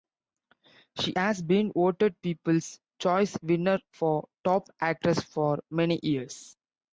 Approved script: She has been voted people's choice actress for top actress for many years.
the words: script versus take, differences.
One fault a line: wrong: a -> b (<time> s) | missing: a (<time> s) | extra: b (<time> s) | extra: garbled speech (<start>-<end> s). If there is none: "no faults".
wrong: actress -> winner (3.4 s)